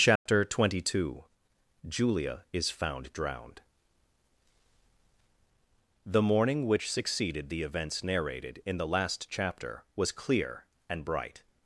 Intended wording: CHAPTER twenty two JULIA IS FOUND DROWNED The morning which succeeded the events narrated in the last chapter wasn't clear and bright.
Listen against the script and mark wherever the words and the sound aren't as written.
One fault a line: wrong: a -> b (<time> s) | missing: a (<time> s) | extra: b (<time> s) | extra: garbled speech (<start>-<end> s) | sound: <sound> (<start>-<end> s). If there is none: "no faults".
sound: dropout (0.2-0.3 s)
wrong: wasn't -> was (9.9 s)